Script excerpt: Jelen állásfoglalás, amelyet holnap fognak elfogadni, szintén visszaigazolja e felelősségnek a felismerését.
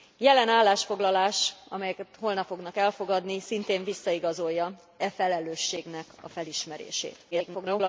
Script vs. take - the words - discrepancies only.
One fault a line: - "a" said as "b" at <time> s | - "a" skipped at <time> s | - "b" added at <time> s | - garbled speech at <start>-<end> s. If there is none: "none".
- garbled speech at 7.3-7.9 s